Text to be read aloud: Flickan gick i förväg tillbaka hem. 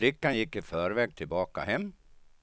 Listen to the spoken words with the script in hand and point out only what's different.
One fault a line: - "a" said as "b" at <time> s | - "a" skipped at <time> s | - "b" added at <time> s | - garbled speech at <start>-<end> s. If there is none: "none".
none